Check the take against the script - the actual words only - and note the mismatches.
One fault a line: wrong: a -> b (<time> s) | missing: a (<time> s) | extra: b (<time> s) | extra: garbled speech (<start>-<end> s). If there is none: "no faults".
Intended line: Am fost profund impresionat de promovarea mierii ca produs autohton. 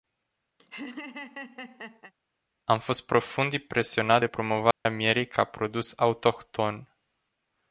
no faults